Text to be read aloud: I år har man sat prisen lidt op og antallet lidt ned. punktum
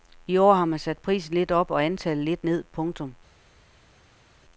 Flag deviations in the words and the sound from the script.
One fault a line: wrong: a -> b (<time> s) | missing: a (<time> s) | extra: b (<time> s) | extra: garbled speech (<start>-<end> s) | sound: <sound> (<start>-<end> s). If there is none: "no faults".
no faults